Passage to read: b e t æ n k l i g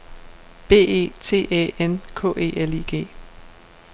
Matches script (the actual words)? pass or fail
fail